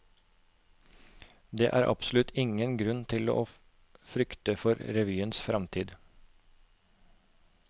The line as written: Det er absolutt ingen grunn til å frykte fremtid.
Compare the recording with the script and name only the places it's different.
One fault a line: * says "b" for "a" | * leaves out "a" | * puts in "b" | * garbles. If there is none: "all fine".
* puts in "for revyens"